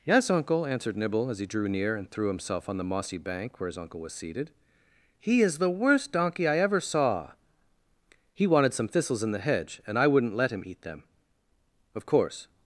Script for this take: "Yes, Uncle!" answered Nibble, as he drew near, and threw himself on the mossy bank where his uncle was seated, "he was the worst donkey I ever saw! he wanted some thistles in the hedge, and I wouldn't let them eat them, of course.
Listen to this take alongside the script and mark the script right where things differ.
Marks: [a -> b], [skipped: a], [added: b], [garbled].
"Yes, Uncle!" answered Nibble, as he drew near, and threw himself on the mossy bank where his uncle was seated, "he [was -> is] the worst donkey I ever saw! he wanted some thistles in the hedge, and I wouldn't let [them -> him] eat them, of course.